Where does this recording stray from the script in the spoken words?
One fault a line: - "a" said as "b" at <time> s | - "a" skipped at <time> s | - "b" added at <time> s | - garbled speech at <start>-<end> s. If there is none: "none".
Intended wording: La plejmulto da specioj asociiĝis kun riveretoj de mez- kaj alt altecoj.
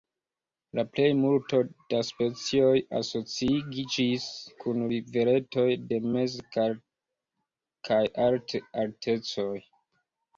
none